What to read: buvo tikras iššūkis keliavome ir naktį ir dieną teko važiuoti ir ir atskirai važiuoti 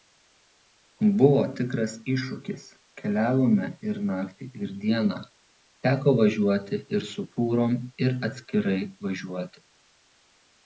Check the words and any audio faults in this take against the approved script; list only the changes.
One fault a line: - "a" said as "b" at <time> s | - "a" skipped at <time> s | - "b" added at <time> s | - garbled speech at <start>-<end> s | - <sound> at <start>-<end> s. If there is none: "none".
- "su fūrom" added at 7.1 s